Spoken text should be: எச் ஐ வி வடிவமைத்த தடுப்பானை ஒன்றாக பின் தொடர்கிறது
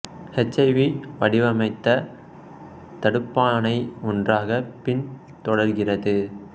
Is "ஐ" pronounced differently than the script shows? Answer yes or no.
no